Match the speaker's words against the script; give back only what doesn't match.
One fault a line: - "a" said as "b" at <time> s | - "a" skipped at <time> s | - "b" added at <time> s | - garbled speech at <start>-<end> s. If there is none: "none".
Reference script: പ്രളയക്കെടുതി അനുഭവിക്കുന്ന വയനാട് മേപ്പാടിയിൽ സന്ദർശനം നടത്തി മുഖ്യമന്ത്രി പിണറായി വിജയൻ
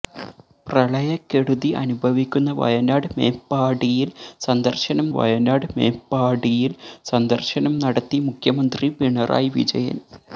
- "വയനാട് മേപ്പാടിയിൽ സന്ദർശനം" added at 5.2 s